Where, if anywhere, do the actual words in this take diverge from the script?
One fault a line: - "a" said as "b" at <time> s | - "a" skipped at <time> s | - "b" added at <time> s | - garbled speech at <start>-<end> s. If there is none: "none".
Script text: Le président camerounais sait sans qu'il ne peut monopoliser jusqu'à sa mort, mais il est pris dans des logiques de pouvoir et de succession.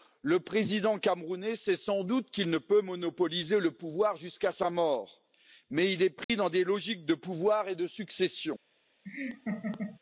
- "doute" added at 2.0 s
- "le pouvoir" added at 3.6 s